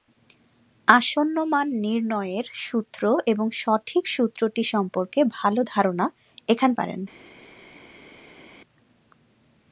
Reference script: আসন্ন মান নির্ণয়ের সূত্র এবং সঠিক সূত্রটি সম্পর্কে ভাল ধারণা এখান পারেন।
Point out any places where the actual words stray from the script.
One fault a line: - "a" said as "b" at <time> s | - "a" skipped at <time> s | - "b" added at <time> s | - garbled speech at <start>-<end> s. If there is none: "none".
none